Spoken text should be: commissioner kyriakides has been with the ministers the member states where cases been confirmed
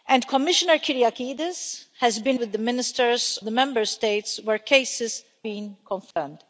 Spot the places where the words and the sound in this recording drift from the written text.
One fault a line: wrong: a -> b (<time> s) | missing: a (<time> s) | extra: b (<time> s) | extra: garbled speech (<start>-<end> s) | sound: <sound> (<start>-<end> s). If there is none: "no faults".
sound: dropout (6.1-6.2 s)